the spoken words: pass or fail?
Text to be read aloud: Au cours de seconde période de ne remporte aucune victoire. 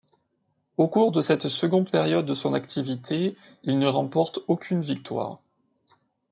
fail